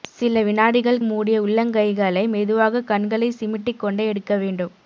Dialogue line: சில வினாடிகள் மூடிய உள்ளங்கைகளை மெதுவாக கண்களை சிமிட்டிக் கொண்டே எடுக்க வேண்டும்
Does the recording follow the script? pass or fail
pass